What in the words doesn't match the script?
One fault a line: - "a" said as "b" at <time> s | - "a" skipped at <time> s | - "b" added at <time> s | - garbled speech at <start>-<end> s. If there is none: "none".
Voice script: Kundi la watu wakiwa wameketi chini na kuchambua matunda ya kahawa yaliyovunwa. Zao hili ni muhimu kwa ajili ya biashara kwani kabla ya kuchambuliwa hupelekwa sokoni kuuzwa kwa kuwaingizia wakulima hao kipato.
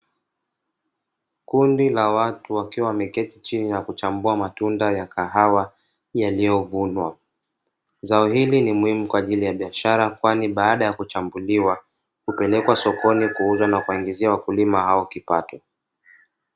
- "kabla" said as "baada" at 10.5 s
- "kwa" said as "na" at 13.7 s